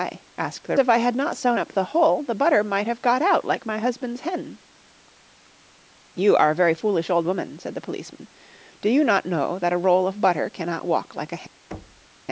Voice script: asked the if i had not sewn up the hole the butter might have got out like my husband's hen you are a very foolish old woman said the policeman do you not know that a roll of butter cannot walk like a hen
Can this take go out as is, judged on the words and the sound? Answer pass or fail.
fail